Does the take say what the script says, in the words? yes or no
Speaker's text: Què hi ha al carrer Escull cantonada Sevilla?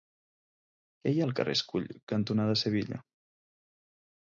yes